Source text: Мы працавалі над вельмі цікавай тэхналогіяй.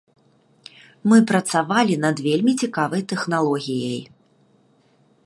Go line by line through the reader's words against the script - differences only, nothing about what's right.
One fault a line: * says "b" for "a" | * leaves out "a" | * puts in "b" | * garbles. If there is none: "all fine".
all fine